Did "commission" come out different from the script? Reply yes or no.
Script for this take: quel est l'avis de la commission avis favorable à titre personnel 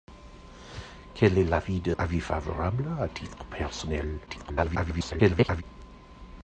yes